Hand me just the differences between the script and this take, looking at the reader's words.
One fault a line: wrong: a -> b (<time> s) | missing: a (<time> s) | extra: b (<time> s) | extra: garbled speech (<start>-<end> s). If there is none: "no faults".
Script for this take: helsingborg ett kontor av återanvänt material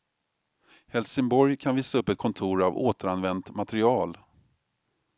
extra: kan visa upp (1.6 s)